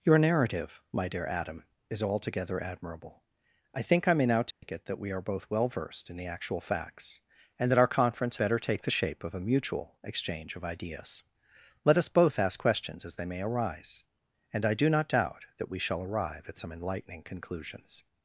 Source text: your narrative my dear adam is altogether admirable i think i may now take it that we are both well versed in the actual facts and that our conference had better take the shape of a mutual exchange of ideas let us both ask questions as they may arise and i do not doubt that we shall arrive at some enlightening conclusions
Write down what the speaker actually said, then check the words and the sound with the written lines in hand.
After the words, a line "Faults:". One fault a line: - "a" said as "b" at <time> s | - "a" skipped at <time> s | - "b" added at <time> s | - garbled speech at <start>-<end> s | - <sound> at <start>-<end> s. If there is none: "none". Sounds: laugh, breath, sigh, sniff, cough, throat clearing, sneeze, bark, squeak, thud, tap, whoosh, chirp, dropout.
your narrative my dear adam is altogether admirable i think i may now take it that we are both well versed in the actual facts and that our conference better take the shape of a mutual exchange of ideas let us both ask questions as they may arise and i do not doubt that we shall arrive at some enlightening conclusions
Faults:
- dropout at 4.5-4.6 s
- "had" skipped at 8.4 s